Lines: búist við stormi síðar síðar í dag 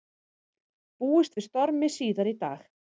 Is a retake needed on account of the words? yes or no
yes